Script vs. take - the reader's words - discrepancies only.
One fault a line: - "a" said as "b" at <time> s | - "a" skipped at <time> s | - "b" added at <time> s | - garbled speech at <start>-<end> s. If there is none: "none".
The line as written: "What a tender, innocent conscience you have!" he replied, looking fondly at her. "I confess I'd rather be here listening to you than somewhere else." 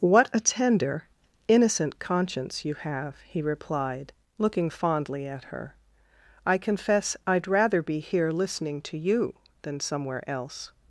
none